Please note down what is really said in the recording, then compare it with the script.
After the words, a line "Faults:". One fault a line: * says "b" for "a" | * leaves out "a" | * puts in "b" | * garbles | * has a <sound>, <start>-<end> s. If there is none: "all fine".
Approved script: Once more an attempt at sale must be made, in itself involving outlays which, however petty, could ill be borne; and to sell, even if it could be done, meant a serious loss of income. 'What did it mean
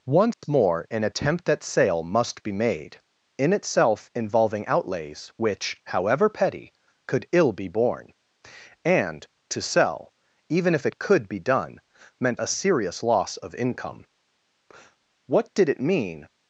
Once more an attempt at sale must be made, in itself involving outlays which, however petty, could ill be borne; and to sell, even if it could be done, meant a serious loss of income. 'What did it mean
Faults:
* has a dropout, 0.3-0.4 s